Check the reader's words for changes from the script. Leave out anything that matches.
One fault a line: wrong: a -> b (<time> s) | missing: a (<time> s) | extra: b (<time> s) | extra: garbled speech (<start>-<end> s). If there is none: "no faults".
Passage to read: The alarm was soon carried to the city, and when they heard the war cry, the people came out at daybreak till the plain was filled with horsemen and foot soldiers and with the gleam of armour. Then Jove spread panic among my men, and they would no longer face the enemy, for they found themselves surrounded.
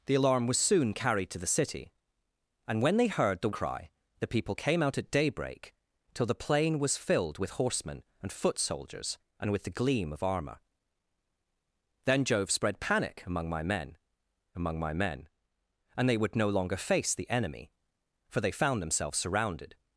missing: war (3.5 s)
extra: among my men (14.6 s)